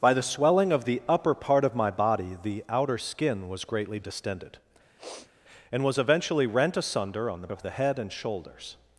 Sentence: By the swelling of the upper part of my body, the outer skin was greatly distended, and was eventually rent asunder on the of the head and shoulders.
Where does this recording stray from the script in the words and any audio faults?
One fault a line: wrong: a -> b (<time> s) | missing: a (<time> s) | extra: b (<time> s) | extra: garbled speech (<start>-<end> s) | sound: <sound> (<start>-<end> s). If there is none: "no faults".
sound: sniff (5.0-5.3 s)